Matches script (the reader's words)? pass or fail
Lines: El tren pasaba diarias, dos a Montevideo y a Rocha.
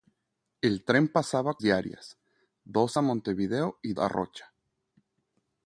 pass